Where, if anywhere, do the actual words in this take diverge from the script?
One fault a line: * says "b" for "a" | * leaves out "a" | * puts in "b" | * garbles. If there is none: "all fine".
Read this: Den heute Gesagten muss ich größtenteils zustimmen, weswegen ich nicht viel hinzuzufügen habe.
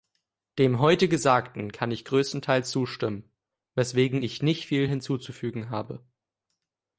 * says "Dem" for "Den"
* says "kann" for "muss"